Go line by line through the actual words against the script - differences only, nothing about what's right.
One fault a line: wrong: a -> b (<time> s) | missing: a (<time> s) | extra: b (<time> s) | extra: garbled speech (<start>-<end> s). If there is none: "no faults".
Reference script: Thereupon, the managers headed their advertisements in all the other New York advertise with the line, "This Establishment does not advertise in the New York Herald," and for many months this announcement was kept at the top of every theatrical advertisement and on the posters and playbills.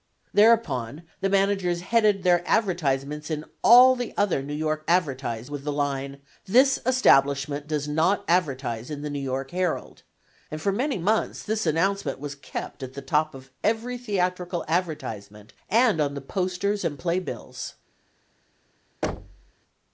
no faults